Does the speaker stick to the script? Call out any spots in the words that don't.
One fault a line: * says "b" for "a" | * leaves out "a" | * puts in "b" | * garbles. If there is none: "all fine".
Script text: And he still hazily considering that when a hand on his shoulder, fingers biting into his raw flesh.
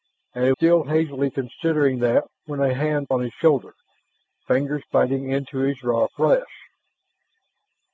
all fine